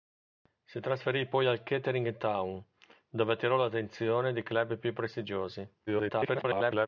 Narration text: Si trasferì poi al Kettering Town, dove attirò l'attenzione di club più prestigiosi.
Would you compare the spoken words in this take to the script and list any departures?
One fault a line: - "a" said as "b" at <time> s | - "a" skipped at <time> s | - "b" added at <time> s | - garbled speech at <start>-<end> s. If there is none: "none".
- garbled speech at 5.9-6.9 s